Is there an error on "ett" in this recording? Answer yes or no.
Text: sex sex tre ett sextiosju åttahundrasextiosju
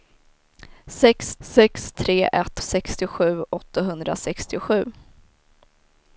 no